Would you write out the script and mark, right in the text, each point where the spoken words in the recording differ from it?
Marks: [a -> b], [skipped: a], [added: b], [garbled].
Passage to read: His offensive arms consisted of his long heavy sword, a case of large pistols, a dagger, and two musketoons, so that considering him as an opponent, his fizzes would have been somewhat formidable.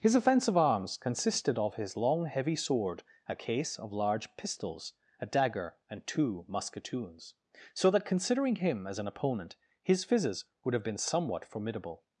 His offensive arms consisted of his long heavy sword, a case of large pistols, a dagger, and two musketoons, so that considering him as an opponent, his fizzes would have been somewhat formidable.